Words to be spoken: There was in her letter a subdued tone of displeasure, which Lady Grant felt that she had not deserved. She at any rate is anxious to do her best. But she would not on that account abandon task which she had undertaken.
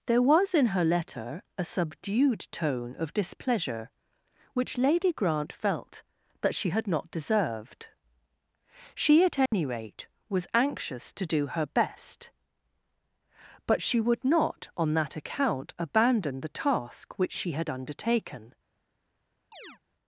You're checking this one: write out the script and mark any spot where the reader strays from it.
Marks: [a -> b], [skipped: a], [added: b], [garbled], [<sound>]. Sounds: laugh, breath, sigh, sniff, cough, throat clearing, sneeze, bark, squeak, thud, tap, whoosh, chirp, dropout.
There was in her letter a subdued tone of displeasure, which Lady Grant felt that she had not deserved. She at any [dropout] rate [is -> was] anxious to do her best. But she would not on that account abandon [added: the] task which she had undertaken. [chirp]